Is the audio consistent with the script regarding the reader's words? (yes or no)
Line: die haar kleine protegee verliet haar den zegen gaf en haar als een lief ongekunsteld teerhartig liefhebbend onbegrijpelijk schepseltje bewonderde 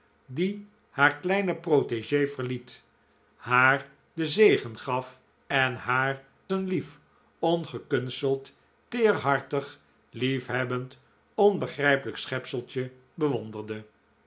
no